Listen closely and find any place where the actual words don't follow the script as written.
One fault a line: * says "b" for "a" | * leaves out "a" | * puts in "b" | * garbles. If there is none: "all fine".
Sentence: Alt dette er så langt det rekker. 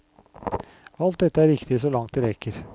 * puts in "riktig"